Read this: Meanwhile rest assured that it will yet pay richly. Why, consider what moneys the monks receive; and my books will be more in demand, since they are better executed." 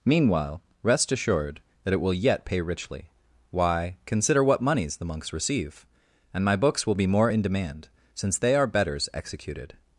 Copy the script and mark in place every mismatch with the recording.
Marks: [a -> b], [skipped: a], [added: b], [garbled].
Meanwhile rest assured that it will yet pay richly. Why, consider what moneys the monks receive; and my books will be more in demand, since they are [better -> betters] executed."